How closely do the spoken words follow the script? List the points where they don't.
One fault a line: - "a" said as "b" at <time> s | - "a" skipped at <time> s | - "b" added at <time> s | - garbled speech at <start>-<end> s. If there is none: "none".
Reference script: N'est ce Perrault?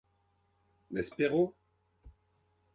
none